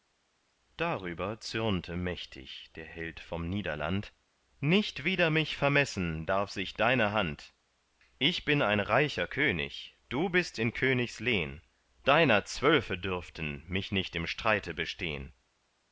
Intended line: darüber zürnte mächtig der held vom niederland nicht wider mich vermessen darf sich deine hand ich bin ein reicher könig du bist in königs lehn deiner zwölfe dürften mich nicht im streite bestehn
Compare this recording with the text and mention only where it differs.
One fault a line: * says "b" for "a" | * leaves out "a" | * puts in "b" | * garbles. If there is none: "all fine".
all fine